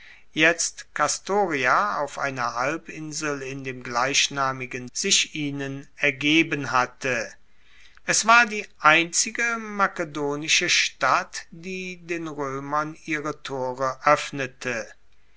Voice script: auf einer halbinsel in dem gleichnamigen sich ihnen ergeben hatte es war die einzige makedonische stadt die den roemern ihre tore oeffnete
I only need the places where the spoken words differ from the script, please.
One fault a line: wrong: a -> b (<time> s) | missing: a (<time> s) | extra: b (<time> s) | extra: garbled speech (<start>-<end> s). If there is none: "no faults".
no faults